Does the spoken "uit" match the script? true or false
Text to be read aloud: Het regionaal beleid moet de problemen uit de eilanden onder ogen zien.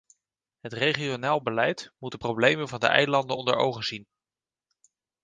false